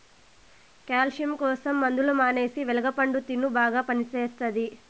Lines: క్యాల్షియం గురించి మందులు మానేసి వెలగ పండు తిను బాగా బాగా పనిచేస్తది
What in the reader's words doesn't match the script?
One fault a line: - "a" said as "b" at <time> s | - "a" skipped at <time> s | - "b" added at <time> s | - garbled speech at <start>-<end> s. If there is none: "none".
- "గురించి" said as "కోసం" at 1.4 s
- "బాగా" skipped at 3.8 s